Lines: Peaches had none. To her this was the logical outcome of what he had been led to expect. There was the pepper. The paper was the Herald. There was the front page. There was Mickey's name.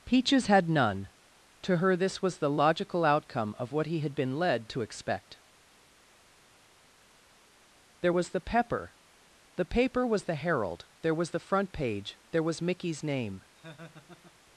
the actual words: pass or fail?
pass